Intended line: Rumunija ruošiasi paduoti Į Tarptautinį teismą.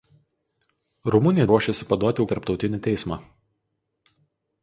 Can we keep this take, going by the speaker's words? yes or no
yes